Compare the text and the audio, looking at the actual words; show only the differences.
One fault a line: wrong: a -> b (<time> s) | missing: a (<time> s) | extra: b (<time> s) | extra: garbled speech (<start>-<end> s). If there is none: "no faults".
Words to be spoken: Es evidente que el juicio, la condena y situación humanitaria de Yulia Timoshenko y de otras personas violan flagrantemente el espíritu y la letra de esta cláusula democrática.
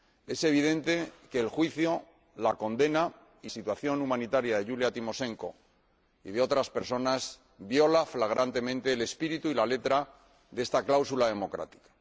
no faults